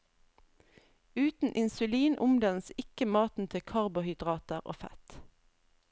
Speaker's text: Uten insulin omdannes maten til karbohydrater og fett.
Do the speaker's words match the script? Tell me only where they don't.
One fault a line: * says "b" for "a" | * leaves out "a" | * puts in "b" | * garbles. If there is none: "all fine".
* puts in "ikke"